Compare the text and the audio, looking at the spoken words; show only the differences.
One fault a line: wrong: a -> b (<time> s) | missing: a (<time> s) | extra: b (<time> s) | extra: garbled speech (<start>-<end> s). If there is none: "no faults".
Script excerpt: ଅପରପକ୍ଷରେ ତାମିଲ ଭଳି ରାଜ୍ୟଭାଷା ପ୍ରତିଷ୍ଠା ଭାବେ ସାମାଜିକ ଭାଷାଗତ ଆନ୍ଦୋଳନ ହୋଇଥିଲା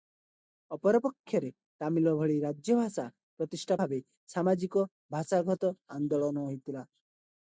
no faults